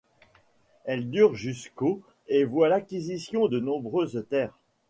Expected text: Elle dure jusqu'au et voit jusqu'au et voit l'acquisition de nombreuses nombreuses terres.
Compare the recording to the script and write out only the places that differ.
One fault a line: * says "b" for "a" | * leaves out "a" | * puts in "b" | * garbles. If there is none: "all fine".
* leaves out "jusqu'au et voit"
* leaves out "nombreuses"